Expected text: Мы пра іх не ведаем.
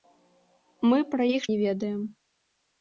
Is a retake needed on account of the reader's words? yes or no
no